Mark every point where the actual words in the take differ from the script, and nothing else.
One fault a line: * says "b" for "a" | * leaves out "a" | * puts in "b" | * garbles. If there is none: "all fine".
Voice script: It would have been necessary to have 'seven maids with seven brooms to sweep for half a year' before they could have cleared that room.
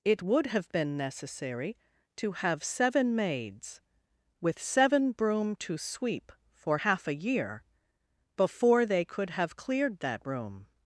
* says "broom" for "brooms"